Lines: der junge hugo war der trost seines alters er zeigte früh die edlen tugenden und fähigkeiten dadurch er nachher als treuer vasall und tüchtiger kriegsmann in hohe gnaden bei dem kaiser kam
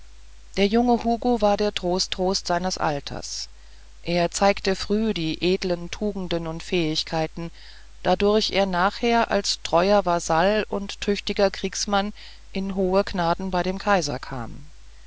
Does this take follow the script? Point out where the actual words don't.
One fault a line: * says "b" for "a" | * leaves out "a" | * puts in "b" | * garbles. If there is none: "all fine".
* puts in "trost"